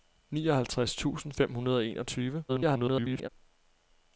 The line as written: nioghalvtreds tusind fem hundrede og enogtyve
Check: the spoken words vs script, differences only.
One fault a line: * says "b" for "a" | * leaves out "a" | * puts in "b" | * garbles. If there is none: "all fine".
* garbles